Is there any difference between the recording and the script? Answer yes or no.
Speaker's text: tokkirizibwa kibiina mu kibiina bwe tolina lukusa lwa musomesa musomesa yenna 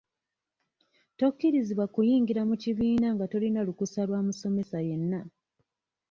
yes